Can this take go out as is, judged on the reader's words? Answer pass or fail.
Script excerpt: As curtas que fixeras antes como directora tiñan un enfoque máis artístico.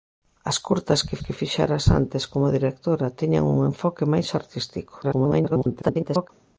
fail